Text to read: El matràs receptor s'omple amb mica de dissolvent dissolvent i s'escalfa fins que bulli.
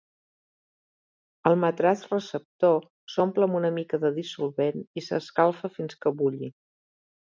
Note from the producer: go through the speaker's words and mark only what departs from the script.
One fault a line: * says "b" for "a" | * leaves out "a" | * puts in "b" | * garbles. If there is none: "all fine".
* puts in "una"
* leaves out "dissolvent"